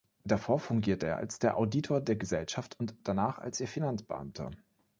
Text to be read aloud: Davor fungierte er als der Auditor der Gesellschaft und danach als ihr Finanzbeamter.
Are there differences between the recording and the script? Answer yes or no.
no